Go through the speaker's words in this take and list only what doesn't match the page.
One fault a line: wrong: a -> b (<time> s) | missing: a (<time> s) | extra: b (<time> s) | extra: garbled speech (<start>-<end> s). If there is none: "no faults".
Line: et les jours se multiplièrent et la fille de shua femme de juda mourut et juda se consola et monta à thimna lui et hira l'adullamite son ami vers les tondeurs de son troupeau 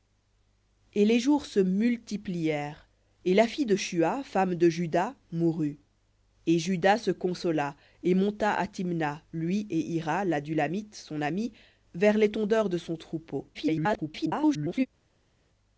extra: garbled speech (13.5-14.9 s)